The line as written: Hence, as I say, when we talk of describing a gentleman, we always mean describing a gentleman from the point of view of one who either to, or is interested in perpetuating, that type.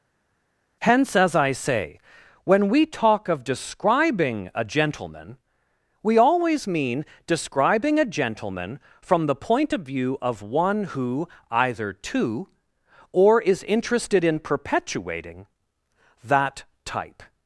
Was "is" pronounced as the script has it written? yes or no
yes